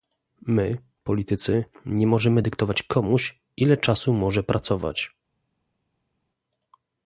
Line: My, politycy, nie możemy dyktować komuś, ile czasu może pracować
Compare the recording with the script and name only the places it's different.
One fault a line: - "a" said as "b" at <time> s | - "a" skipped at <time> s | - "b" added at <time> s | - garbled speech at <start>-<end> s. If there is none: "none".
none